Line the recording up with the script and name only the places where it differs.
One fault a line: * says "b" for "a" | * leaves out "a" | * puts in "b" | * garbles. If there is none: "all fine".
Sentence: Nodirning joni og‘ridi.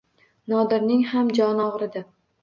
* puts in "ham"